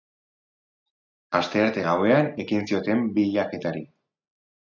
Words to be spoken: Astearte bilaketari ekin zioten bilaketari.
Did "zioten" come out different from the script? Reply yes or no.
no